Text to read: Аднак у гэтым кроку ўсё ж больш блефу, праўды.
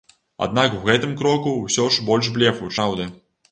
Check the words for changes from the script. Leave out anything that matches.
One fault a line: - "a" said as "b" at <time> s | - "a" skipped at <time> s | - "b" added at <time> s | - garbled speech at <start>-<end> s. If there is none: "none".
none